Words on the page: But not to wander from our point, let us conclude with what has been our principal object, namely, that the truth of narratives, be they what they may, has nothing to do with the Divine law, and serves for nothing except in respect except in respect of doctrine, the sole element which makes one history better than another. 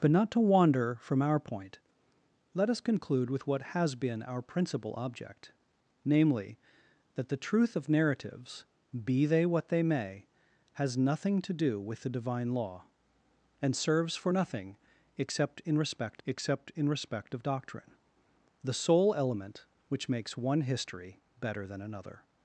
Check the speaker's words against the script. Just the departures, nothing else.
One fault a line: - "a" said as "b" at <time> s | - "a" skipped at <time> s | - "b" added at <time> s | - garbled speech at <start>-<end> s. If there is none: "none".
none